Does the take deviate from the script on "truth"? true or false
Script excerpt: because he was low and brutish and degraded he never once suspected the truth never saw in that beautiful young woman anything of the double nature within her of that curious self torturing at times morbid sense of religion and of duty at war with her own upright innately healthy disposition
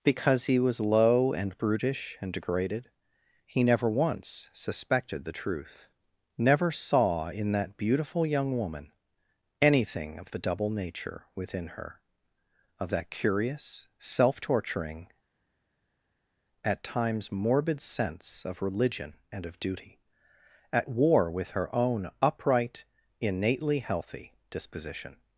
false